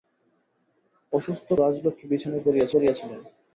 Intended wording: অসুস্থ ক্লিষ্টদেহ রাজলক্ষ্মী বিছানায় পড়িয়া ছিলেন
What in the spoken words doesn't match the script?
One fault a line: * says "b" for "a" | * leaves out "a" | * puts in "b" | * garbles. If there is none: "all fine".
* leaves out "ক্লিষ্টদেহ"
* puts in "পড়িয়া"